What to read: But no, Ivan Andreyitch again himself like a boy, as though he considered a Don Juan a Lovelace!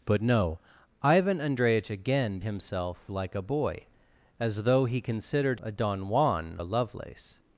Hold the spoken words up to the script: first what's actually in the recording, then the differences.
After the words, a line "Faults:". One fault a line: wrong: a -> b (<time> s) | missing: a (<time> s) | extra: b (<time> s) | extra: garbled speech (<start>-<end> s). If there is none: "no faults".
But no, Ivan Andreyitch again himself like a boy, as though he considered a Don Juan a Lovelace!
Faults:
no faults